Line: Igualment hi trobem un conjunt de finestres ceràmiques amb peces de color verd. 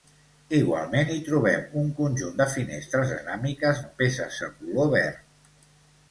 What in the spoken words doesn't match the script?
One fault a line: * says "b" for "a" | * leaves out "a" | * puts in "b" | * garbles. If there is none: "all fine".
all fine